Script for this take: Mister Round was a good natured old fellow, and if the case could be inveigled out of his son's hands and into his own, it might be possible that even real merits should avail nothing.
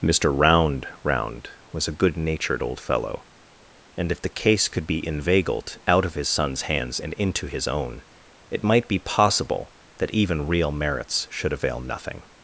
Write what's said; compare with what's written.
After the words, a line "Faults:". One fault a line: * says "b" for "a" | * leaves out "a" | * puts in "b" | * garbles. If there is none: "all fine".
Mister Round Round was a good natured old fellow, and if the case could be inveigled out of his son's hands and into his own, it might be possible that even real merits should avail nothing.
Faults:
* puts in "Round"